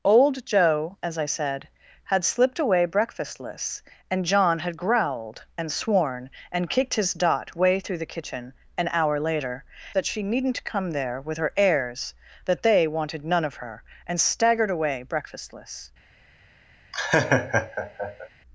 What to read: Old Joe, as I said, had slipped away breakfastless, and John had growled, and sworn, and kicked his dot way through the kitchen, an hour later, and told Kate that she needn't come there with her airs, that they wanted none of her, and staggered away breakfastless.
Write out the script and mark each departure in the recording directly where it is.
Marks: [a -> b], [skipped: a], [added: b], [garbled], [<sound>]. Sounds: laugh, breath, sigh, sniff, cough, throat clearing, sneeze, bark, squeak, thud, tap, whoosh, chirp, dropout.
Old Joe, as I said, had slipped away breakfastless, and John had growled, and sworn, and kicked his dot way through the kitchen, an hour later, [skipped: and told Kate] that she needn't come there with her airs, that they wanted none of her, and staggered away breakfastless. [laugh]